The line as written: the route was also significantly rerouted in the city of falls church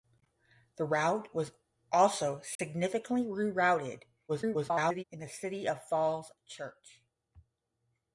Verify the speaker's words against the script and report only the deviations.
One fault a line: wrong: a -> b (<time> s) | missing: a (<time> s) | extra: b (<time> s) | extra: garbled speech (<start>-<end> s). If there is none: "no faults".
extra: garbled speech (4.3-5.0 s)